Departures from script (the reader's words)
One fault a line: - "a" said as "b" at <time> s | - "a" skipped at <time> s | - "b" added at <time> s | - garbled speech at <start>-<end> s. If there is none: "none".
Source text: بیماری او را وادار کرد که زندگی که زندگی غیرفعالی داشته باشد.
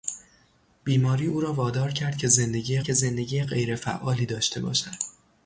none